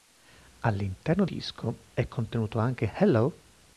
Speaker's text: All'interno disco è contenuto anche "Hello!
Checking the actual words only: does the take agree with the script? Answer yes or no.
yes